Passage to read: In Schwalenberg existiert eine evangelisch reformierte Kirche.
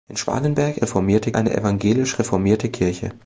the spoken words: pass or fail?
fail